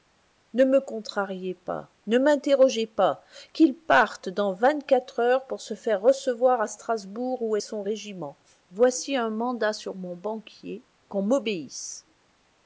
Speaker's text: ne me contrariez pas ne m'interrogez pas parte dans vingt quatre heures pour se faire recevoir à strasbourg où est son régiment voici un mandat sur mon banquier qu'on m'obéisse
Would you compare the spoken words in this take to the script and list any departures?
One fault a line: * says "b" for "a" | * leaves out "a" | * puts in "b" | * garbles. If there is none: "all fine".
* puts in "qu'il"